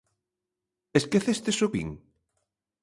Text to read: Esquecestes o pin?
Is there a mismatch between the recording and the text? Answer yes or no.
no